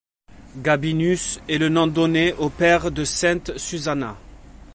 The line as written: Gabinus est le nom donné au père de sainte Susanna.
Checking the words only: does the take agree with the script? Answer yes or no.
yes